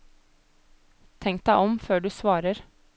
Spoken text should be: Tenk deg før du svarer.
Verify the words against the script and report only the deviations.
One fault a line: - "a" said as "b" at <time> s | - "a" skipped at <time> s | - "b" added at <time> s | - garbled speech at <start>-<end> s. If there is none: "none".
- "om" added at 1.6 s